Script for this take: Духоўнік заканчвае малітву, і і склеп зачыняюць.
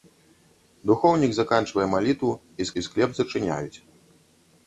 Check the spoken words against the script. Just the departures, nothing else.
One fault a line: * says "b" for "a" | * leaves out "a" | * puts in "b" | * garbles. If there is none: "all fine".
all fine